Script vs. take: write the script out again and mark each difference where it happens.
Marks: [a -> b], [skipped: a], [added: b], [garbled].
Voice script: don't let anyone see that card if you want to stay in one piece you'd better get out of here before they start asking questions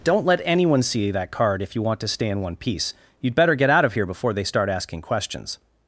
don't let anyone see that card if you want to stay in one piece you'd better get out of here before they start asking questions